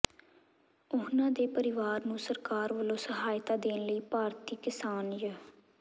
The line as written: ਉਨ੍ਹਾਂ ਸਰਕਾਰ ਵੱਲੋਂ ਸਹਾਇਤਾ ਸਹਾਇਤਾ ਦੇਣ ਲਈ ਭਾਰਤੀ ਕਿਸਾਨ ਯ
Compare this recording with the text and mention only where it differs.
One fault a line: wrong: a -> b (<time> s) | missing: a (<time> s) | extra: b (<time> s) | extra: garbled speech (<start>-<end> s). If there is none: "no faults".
extra: ਦੇ ਪਰਿਵਾਰ ਨੂੰ (1.3 s)
missing: ਸਹਾਇਤਾ (3.6 s)